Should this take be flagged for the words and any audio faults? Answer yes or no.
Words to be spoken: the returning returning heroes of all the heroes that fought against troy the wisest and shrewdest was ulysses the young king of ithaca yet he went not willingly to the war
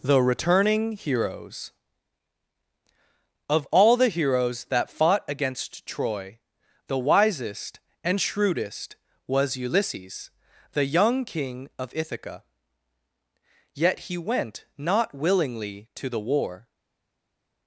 yes